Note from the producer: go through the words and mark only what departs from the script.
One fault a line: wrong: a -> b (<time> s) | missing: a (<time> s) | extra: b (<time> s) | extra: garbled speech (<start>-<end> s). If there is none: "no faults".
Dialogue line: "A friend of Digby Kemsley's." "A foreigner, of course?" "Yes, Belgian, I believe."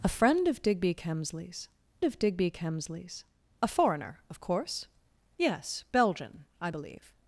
extra: of Digby Kemsley's (2.0 s)